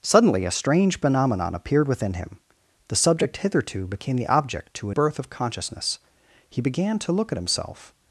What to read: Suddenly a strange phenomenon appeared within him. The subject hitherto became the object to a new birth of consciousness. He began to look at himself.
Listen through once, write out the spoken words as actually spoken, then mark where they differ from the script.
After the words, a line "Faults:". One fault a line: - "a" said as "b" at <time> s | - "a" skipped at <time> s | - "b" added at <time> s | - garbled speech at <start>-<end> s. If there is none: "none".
Suddenly a strange phenomenon appeared within him. The subject hitherto became the object to a birth of consciousness. He began to look at himself.
Faults:
- "new" skipped at 5.0 s